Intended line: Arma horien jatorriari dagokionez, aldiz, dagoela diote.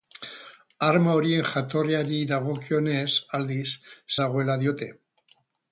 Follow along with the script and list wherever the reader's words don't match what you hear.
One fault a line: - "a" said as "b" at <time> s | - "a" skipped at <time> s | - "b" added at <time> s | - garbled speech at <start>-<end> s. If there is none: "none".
none